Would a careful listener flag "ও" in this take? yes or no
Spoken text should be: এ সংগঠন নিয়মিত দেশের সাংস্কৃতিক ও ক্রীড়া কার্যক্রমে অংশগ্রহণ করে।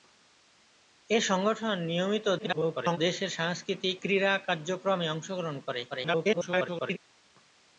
yes